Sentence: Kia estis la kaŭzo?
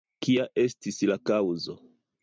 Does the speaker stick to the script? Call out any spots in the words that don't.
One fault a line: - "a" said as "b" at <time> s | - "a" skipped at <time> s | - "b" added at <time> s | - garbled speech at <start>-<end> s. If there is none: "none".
none